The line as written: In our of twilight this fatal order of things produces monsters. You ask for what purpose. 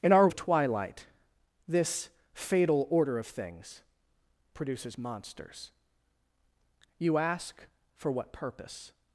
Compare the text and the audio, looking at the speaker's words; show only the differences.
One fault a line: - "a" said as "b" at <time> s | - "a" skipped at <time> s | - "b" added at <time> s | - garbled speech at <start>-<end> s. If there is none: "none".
none